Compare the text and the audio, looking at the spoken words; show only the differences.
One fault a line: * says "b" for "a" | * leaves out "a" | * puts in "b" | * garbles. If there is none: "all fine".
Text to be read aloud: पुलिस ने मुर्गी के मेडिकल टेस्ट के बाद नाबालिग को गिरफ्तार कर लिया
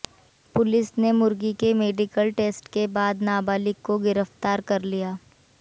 all fine